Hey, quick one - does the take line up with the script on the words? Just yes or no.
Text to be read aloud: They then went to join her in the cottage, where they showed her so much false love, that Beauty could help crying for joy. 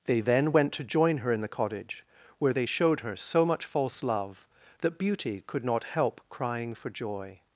no